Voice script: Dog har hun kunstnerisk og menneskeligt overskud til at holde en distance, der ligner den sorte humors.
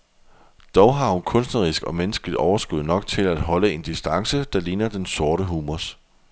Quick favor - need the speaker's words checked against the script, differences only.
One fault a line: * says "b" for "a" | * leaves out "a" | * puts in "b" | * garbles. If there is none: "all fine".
* puts in "nok"